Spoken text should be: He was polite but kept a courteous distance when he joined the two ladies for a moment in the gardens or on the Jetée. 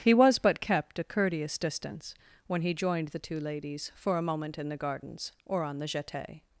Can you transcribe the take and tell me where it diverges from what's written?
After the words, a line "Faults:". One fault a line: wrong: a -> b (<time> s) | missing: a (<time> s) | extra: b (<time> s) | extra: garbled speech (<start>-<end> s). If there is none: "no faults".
He was but kept a courteous distance when he joined the two ladies for a moment in the gardens or on the Jetée.
Faults:
missing: polite (0.4 s)